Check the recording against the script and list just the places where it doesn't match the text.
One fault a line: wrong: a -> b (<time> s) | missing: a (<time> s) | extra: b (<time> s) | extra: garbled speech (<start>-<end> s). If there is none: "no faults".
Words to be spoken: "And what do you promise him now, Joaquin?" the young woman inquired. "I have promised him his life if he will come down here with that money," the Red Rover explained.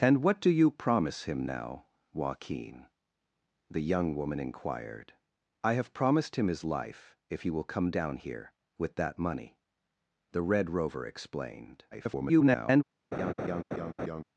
extra: garbled speech (11.9-12.8 s)